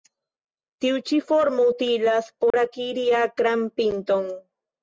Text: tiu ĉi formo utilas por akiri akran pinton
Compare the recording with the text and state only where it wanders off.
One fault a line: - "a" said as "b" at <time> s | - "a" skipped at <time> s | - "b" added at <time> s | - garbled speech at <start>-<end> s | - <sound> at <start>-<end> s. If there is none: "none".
- dropout at 2.5-2.5 s